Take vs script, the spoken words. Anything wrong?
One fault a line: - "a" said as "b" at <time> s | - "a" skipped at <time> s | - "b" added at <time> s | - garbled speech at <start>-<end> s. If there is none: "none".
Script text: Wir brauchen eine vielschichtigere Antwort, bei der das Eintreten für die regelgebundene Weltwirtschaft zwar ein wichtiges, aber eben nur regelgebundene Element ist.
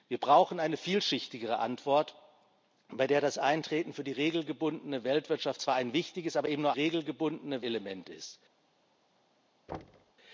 none